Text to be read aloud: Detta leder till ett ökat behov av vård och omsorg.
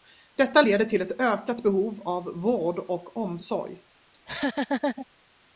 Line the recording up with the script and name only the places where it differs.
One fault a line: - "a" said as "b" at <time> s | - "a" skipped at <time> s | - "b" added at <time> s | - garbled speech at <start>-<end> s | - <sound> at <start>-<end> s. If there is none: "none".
- laugh at 4.1-5.1 s